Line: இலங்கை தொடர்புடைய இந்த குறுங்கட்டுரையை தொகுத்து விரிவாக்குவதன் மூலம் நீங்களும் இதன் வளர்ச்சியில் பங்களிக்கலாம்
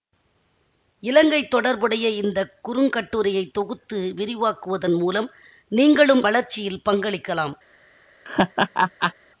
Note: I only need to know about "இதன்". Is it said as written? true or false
false